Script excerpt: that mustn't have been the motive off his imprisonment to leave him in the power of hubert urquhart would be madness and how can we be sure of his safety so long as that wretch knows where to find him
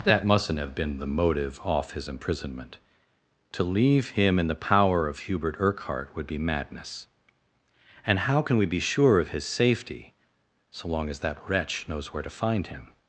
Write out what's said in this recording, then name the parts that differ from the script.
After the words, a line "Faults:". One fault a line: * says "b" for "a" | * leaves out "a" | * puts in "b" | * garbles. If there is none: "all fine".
that mustn't have been the motive off his imprisonment to leave him in the power of hubert urquhart would be madness and how can we be sure of his safety so long as that wretch knows where to find him
Faults:
all fine